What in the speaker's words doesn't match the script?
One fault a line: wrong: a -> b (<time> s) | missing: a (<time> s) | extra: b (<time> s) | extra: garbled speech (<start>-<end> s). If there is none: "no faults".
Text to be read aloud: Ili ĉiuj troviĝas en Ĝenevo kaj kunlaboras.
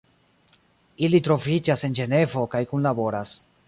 missing: ĉiuj (1.2 s)